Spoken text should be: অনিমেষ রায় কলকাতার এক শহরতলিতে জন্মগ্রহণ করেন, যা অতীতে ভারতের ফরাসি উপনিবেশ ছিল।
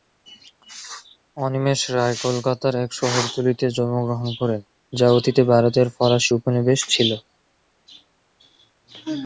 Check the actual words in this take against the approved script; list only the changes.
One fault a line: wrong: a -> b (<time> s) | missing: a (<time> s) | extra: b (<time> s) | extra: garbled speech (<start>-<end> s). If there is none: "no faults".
no faults